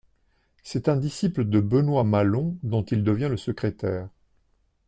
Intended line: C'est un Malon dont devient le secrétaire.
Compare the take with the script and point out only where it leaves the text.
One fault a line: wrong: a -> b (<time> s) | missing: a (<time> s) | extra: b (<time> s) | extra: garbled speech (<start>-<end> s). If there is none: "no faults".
extra: disciple de Benoît (1.0 s)
extra: il (2.8 s)